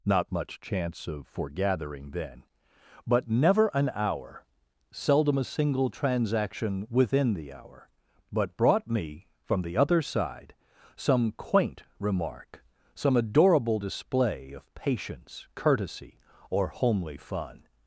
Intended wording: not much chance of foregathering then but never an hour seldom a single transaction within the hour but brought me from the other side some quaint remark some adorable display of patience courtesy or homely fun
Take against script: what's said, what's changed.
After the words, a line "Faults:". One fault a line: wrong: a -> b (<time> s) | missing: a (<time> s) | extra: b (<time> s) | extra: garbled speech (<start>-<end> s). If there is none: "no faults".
not much chance of foregathering then but never an hour seldom a single transaction within the hour but brought me from the other side some quaint remark some adorable display of patience courtesy or homely fun
Faults:
no faults